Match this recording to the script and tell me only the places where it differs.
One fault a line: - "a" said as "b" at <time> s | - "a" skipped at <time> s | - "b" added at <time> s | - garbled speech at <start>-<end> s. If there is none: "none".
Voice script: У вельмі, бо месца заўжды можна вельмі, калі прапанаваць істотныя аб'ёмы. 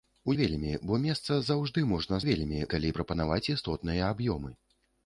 none